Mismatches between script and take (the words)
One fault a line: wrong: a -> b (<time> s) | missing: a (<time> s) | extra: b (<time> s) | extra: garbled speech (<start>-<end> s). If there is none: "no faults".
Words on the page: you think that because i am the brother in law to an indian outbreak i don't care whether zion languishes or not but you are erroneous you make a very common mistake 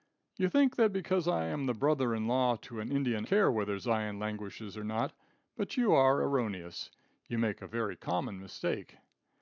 missing: outbreak i don't (3.2 s)